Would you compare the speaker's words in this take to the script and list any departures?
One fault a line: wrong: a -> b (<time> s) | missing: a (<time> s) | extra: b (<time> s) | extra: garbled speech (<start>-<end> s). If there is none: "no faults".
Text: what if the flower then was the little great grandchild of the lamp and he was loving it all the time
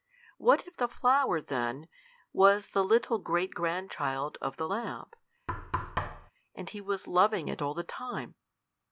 no faults